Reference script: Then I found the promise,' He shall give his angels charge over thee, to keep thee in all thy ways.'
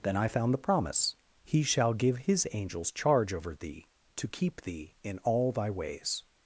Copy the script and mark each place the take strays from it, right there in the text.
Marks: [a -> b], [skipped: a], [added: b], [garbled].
Then I found the promise,' He shall give his angels charge over thee, to keep thee in all thy ways.'